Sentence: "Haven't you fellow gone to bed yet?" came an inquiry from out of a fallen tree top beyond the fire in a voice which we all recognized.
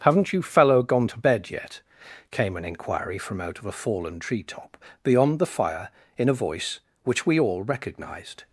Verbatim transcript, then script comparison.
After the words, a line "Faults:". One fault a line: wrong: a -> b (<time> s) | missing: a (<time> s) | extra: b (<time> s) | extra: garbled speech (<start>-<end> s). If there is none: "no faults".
"Haven't you fellow gone to bed yet?" came an inquiry from out of a fallen tree top beyond the fire in a voice which we all recognized.
Faults:
no faults